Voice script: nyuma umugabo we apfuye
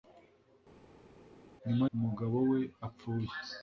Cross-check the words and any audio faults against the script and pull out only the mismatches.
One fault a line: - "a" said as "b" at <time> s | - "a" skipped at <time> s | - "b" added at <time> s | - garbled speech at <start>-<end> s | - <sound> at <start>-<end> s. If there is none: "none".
none